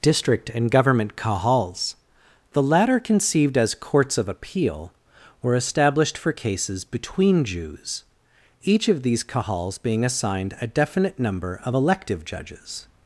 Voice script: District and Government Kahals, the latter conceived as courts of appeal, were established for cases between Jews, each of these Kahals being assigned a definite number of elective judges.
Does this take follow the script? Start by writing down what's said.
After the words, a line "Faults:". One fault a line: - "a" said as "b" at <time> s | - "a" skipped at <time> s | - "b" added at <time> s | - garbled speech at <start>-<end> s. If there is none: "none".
District and Government Kahals, the latter conceived as courts of appeal, were established for cases between Jews, each of these Kahals being assigned a definite number of elective judges.
Faults:
none